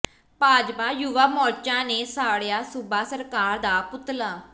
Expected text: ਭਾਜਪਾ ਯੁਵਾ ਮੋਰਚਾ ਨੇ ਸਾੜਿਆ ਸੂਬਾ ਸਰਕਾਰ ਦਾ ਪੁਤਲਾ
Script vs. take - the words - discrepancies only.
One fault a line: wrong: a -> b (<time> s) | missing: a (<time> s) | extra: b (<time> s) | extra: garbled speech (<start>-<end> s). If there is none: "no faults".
no faults